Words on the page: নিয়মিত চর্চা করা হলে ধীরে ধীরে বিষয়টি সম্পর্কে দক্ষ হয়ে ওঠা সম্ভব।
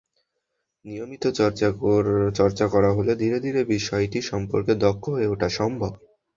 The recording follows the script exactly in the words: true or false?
true